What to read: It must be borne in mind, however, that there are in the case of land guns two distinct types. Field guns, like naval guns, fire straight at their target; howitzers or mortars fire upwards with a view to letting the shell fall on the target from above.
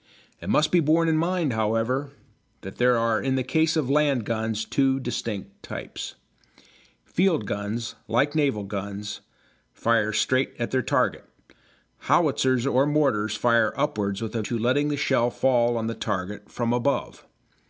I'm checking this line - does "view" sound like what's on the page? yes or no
no